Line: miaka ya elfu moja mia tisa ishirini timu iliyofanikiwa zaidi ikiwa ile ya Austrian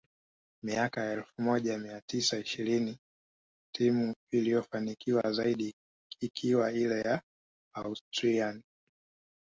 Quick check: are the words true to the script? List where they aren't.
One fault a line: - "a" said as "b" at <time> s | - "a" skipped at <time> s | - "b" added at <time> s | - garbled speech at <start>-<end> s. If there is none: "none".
none